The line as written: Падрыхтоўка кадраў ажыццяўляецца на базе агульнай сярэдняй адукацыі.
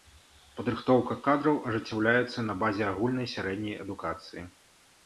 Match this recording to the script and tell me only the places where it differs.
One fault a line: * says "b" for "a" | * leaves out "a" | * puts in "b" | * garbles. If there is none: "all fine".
all fine